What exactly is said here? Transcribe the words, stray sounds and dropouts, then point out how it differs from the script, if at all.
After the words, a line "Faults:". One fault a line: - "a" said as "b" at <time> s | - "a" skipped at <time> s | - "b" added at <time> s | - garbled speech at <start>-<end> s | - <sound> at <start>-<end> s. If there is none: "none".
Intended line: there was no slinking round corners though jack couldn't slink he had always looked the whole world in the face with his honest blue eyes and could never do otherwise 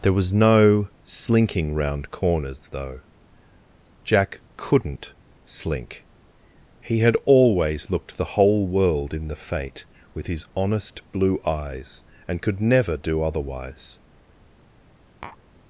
there was no slinking round corners though jack couldn't slink he had always looked the whole world in the fate with his honest blue eyes and could never do otherwise
Faults:
- "face" said as "fate" at 9.3 s
- tap at 15.2-15.4 s